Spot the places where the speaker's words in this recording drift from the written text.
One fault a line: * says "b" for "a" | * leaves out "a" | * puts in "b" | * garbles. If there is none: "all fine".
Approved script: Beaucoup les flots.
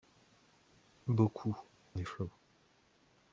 all fine